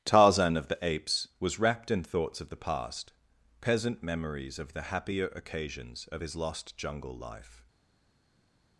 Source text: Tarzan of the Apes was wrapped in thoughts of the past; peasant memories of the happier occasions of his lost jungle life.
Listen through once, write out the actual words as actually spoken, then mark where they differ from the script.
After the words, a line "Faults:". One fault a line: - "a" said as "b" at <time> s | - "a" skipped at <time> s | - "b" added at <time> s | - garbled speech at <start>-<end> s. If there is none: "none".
Tarzan of the Apes was wrapped in thoughts of the past; peasant memories of the happier occasions of his lost jungle life.
Faults:
none